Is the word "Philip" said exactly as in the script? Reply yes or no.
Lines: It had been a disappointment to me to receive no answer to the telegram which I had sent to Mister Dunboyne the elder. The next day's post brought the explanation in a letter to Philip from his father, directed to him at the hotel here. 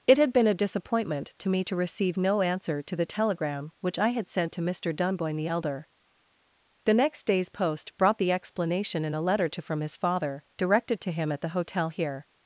no